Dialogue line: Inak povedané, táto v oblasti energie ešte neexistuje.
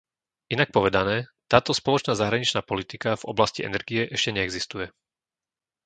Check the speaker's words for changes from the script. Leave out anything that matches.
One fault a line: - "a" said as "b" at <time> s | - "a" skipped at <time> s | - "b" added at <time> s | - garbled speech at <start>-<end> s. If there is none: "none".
- "spoločná zahraničná politika" added at 1.8 s